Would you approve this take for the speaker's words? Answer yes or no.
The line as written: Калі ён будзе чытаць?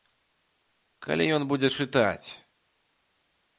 yes